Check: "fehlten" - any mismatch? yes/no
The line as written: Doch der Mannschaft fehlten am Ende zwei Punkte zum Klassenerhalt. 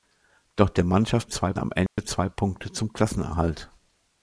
yes